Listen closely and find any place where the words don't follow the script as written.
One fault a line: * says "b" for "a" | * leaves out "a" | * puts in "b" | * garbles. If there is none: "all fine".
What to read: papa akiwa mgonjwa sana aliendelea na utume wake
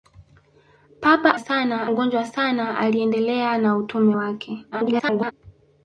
* says "sana" for "akiwa"
* garbles